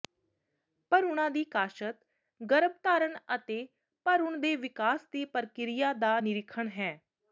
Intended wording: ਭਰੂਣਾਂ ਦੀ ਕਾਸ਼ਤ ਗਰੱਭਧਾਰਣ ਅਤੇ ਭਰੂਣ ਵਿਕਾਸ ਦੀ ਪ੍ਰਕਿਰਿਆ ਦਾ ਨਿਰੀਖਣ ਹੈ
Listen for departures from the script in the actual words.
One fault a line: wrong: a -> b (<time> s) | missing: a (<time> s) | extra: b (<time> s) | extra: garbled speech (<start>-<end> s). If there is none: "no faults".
extra: ਦੇ (4.4 s)